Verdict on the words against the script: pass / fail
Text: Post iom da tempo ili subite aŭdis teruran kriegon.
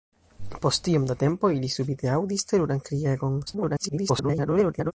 fail